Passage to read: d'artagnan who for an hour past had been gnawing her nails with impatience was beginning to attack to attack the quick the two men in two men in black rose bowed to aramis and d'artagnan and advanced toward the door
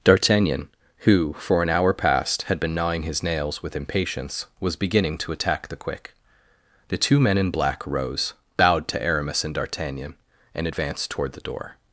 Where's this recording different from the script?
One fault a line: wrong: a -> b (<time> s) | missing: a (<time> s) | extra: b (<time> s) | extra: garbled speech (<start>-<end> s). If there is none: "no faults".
wrong: her -> his (3.0 s)
missing: to attack (5.7 s)
missing: two men in (7.5 s)